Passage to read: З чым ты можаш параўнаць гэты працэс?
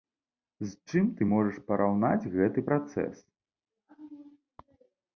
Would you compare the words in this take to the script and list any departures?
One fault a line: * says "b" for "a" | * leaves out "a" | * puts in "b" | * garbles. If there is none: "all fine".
all fine